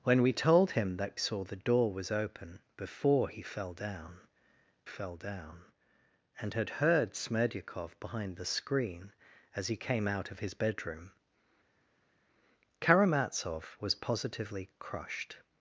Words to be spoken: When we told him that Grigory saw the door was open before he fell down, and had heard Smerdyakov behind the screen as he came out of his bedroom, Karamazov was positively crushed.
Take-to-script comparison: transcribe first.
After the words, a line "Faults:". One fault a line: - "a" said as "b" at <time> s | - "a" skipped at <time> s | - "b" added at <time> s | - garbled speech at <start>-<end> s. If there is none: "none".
When we told him that Saw the door was open before he fell down fell down, and had heard Smerdyakov behind the screen as he came out of his bedroom, Karamazov was positively crushed.
Faults:
- "Grigory" skipped at 1.1 s
- "fell down" added at 4.8 s